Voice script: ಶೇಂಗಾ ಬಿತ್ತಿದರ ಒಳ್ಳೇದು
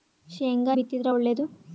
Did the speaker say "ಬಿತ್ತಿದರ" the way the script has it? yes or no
yes